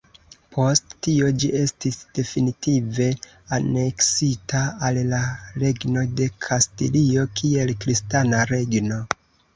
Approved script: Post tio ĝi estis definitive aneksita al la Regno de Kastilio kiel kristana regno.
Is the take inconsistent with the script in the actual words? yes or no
no